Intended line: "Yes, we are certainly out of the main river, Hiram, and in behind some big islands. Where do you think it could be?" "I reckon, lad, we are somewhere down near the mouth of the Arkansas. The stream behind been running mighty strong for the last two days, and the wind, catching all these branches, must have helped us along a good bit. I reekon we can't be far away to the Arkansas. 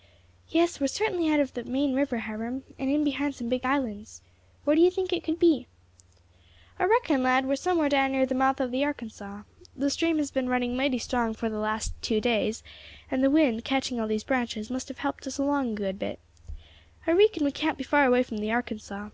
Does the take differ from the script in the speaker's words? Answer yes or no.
yes